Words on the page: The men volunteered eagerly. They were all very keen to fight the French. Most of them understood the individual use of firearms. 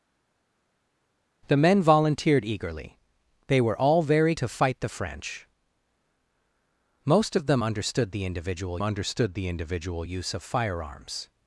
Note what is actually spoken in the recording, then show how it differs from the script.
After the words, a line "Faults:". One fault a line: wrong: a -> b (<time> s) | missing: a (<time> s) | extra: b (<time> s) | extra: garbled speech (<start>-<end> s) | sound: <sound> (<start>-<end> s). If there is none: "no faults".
The men volunteered eagerly. They were all very to fight the French. Most of them understood the individual understood the individual use of firearms.
Faults:
missing: keen (4.3 s)
extra: understood the individual (8.8 s)